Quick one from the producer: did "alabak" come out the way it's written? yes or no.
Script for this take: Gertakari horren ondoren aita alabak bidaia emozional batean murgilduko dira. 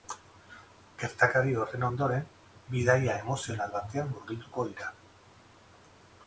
no